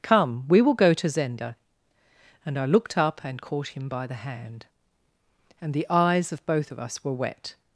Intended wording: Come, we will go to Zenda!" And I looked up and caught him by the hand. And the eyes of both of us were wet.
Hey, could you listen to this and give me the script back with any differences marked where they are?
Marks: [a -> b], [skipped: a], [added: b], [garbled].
Come, we will go to Zenda!" And I looked up and caught him by the hand. And the eyes of both of us were wet.